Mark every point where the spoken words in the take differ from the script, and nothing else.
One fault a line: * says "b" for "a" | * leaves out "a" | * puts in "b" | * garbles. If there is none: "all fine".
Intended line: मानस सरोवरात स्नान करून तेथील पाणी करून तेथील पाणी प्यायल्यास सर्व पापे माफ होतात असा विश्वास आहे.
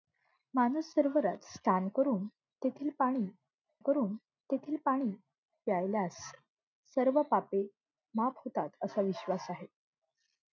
all fine